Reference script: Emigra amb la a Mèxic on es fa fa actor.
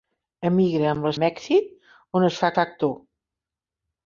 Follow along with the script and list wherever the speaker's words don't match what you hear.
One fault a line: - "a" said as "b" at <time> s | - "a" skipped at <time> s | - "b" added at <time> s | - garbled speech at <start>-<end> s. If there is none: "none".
none